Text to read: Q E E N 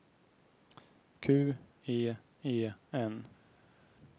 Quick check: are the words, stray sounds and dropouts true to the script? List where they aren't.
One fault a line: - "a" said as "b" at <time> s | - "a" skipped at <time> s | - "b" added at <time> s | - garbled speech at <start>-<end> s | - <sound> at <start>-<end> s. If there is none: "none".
none